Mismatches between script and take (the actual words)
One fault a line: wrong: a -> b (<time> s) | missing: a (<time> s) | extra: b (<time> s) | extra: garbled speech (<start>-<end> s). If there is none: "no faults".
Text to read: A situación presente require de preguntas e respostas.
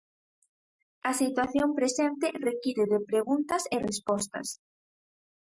no faults